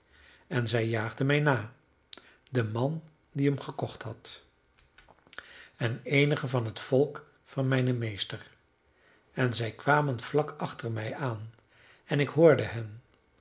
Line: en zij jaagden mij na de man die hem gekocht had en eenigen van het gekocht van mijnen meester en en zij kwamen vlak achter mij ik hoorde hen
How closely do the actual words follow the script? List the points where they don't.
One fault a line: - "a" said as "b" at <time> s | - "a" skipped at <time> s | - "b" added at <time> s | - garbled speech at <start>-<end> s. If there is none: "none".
- "gekocht" said as "volk" at 6.8 s
- "en" skipped at 9.5 s
- "aan en" added at 11.2 s